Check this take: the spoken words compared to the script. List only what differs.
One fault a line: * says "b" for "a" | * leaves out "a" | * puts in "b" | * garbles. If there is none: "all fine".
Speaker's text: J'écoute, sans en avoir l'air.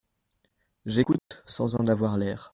all fine